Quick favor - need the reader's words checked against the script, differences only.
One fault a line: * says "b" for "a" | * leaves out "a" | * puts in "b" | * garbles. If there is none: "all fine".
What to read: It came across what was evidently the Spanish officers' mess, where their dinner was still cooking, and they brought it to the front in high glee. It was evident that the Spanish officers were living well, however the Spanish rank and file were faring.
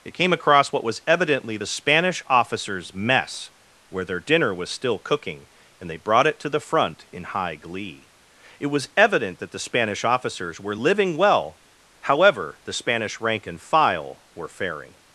all fine